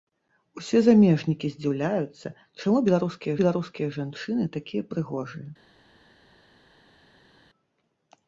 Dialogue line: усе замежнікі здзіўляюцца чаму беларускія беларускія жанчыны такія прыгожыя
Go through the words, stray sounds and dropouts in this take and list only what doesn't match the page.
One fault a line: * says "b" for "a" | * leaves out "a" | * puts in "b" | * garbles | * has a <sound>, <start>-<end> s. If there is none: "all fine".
all fine